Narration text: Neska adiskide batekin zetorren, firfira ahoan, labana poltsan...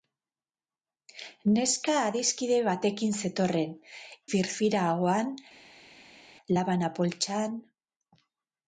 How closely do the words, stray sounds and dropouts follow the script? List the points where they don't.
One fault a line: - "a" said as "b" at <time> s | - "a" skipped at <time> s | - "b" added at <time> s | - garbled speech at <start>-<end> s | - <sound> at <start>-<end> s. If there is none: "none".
none